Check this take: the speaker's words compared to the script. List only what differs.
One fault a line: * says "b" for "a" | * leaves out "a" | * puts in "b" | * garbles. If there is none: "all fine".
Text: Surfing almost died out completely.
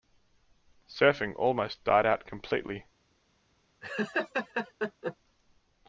all fine